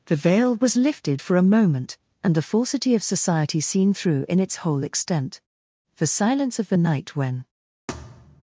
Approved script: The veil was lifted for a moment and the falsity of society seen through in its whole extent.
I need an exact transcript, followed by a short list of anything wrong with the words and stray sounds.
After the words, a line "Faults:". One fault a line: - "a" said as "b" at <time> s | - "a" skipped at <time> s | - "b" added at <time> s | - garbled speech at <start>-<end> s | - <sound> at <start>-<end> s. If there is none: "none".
The veil was lifted for a moment and the falsity of society seen through in its whole extent. The silence of the night when
Faults:
- "The silence of the night when" added at 6.0 s
- thud at 7.9-8.4 s